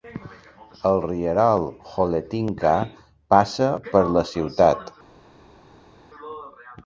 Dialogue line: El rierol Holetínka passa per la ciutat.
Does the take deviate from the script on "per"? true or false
false